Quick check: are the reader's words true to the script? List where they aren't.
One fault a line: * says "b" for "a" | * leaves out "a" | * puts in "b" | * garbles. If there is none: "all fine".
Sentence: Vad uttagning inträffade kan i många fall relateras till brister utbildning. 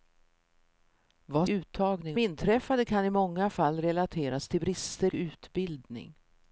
all fine